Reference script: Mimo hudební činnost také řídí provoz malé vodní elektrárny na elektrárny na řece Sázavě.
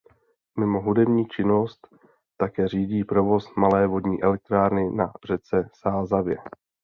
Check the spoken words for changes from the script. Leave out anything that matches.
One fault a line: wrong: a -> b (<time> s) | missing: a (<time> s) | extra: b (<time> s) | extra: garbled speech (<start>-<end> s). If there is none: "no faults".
missing: elektrárny na (5.1 s)